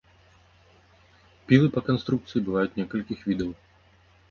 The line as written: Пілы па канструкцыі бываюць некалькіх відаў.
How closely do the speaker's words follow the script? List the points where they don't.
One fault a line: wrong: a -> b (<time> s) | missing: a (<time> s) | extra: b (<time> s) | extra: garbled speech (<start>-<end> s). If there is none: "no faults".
no faults